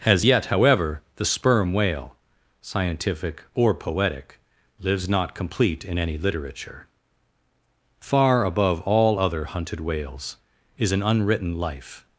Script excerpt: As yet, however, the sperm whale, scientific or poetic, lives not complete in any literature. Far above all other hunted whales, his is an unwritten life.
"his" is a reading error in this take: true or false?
true